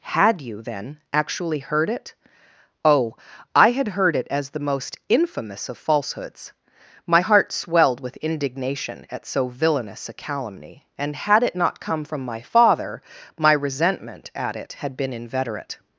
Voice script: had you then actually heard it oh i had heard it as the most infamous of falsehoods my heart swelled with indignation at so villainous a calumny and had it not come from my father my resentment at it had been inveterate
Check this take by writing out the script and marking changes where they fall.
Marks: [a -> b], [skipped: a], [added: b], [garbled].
had you then actually heard it oh i had heard it as the most infamous of falsehoods my heart swelled with indignation at so villainous a calumny and had it not come from my father my resentment at it had been inveterate